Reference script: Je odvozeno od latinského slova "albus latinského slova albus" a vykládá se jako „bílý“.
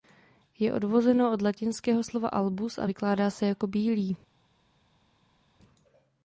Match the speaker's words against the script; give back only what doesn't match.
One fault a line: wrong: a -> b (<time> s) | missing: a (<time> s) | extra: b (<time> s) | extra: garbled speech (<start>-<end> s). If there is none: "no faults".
missing: latinského slova albus (2.8 s)